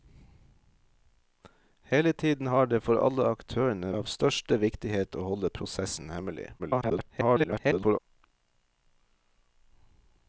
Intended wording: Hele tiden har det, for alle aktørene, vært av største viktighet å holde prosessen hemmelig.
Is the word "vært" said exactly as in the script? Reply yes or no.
no